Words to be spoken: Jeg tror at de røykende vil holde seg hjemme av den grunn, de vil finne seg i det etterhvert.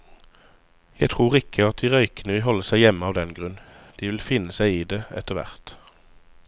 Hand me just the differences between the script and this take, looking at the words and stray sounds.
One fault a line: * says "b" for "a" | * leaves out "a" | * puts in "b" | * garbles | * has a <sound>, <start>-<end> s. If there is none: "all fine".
* puts in "ikke"